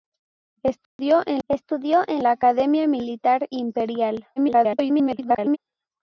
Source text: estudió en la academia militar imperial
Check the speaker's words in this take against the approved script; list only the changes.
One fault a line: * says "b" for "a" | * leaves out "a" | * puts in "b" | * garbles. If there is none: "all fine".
* puts in "estudió en"
* garbles